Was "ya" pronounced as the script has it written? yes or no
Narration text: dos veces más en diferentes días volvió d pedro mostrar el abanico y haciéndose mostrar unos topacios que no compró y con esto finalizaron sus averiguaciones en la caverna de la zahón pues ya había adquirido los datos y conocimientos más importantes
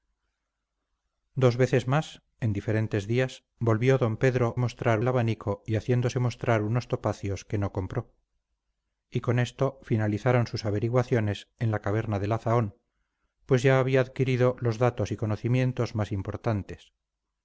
yes